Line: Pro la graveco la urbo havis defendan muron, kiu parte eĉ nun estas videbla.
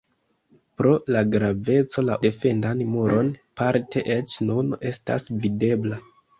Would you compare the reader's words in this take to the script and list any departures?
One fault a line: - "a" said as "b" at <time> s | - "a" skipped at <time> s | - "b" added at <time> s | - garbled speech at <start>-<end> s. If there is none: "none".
- "urbo havis" skipped at 2.2 s
- "kiu" skipped at 3.3 s